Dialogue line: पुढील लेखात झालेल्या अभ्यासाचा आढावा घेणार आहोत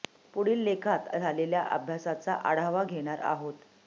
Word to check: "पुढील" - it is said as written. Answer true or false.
true